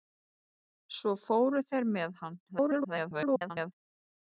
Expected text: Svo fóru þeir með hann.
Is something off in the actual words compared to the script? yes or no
yes